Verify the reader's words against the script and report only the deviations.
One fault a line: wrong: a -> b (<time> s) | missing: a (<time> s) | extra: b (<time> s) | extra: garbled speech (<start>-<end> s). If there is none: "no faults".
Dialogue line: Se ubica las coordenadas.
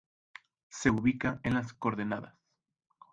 extra: en (1.4 s)